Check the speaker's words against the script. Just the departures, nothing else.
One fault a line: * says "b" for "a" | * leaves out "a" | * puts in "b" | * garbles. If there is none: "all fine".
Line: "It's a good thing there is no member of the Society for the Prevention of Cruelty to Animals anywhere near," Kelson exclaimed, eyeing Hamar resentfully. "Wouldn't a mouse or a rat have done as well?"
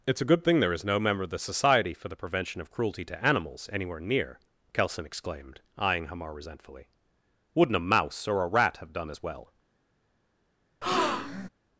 all fine